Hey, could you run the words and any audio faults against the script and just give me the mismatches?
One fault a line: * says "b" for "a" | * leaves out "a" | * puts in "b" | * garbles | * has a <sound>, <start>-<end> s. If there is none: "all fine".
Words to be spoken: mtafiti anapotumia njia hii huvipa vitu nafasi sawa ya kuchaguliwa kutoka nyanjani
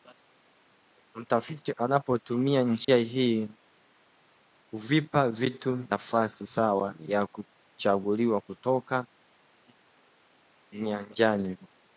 * has a dropout, 2.8-2.9 s